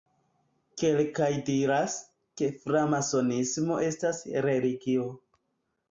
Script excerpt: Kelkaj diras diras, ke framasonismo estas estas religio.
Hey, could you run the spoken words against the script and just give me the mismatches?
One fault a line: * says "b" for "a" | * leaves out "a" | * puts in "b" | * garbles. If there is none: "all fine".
* leaves out "diras"
* leaves out "estas"